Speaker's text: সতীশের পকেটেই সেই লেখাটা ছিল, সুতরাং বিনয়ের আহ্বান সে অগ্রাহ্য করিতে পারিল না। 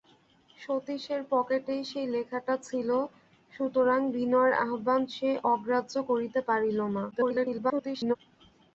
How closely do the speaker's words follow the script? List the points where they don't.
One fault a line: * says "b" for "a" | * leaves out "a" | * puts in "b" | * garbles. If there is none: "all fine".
* garbles